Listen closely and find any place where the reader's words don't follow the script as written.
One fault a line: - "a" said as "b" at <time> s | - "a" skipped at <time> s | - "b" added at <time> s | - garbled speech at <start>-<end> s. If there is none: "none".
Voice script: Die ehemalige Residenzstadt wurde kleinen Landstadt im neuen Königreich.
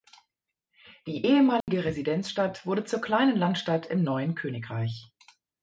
- "zur" added at 2.8 s